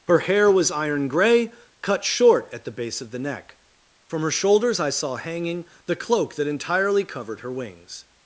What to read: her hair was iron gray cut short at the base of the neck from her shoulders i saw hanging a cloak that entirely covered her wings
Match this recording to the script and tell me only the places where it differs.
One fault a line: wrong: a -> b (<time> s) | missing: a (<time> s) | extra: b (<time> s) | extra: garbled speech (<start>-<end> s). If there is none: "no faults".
wrong: a -> the (5.8 s)